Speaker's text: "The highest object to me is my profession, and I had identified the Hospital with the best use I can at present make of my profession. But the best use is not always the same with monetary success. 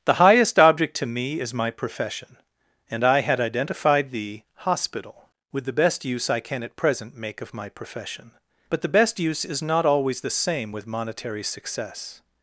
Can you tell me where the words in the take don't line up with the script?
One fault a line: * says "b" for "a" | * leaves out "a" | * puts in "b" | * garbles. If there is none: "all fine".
all fine